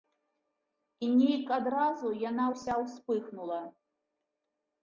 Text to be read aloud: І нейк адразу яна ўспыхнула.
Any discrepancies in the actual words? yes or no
yes